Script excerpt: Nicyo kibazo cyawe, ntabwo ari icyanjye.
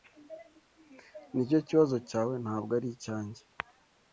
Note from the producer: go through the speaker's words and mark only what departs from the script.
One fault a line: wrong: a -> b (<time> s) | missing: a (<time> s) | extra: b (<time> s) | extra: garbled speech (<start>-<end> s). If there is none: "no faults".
no faults